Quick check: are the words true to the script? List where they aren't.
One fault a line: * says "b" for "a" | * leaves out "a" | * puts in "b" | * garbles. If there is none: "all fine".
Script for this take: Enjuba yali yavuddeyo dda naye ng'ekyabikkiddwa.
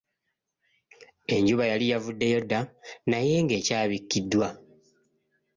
all fine